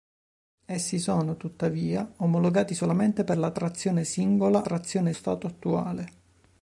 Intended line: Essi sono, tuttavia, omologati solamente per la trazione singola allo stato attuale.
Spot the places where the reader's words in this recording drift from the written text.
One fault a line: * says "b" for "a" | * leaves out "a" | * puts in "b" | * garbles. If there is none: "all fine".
* says "trazione" for "allo"